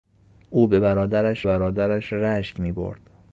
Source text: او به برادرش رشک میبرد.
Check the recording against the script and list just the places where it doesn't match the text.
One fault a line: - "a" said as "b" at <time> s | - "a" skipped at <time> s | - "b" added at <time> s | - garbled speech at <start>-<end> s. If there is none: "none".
- "برادرش" added at 1.4 s